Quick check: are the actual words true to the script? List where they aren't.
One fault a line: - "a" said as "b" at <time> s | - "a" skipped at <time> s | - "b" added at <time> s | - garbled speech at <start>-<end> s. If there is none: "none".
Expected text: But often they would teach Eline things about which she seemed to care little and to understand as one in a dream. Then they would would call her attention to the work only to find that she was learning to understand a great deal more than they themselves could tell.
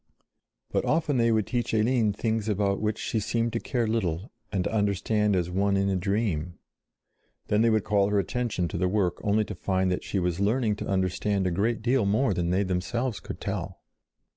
- "would" skipped at 7.8 s